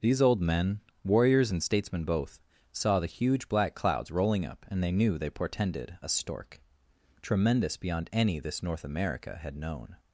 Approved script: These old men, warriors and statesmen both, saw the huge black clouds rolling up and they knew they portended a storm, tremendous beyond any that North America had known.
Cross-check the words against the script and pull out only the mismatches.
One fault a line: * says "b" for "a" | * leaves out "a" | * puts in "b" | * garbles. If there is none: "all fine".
* says "stork" for "storm"
* says "this" for "that"